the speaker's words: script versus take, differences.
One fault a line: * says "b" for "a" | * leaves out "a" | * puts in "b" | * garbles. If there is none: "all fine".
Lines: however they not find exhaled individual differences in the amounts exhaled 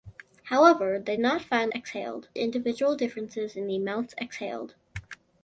all fine